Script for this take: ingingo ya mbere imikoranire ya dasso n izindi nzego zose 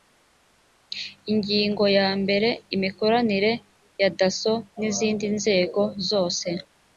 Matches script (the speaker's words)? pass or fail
pass